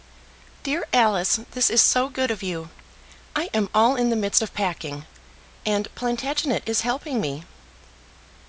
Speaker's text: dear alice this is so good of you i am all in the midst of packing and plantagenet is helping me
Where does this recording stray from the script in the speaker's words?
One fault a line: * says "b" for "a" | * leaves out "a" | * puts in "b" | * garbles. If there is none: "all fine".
all fine